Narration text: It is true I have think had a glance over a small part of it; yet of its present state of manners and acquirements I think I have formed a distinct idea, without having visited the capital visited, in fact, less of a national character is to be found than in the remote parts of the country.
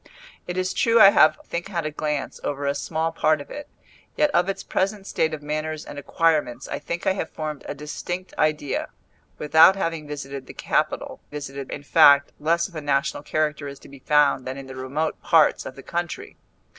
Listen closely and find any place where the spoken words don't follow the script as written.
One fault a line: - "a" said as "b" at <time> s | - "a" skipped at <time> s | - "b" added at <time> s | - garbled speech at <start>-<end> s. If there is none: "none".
none